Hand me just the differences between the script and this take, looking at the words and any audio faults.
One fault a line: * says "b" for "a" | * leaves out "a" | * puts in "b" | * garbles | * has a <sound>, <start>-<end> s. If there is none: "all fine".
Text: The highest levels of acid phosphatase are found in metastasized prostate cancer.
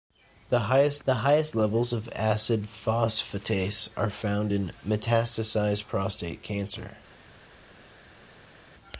* puts in "the highest"